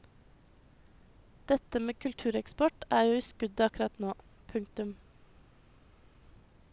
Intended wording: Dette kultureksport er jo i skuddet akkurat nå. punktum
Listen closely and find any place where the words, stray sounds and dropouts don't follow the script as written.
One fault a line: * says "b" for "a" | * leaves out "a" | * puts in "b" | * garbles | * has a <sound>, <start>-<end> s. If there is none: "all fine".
* puts in "med"